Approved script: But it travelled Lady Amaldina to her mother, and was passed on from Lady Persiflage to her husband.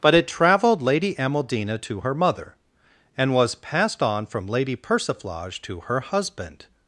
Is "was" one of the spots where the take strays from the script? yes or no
no